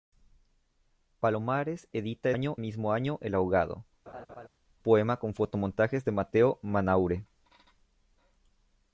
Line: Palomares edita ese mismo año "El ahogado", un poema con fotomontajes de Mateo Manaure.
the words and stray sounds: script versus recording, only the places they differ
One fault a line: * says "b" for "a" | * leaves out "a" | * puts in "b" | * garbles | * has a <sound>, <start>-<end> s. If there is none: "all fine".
* says "año" for "ese"
* leaves out "un"
* has a laugh, 4.1-4.5 s